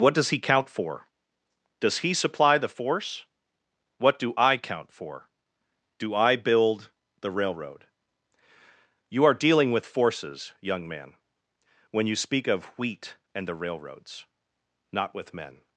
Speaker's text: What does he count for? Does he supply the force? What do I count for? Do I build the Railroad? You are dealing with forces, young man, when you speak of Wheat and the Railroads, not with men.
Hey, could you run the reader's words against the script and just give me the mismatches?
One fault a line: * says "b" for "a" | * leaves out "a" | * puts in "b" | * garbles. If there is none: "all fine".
all fine